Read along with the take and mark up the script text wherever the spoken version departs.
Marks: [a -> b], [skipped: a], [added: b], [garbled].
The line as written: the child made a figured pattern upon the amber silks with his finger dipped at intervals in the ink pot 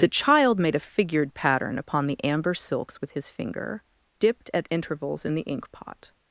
the child made a figured pattern upon the amber silks with his finger dipped at intervals in the ink pot